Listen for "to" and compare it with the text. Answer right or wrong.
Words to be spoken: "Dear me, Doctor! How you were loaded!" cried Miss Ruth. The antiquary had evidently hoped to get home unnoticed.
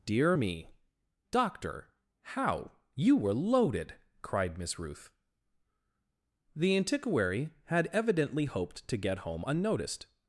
right